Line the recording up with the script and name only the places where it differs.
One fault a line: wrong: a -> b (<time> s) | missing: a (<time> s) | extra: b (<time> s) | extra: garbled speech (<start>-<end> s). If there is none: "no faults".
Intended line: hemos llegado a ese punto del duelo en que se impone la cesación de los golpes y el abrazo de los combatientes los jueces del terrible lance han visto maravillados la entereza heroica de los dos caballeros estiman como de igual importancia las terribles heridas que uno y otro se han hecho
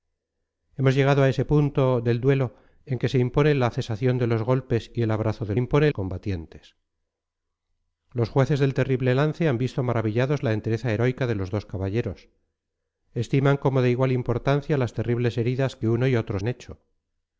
wrong: los -> impone (5.6 s)
missing: se (16.4 s)